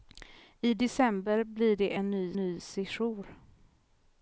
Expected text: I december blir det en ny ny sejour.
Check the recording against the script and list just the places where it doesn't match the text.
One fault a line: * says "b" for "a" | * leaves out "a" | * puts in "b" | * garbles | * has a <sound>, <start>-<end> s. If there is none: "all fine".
all fine